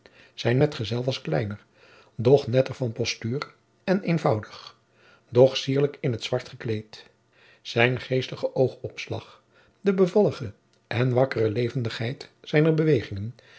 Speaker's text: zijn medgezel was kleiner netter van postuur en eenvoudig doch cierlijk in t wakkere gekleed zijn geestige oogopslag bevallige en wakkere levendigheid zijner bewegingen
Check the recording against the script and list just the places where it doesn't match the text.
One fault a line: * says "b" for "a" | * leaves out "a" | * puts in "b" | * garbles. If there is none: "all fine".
* puts in "doch"
* says "zwart" for "wakkere"
* puts in "de"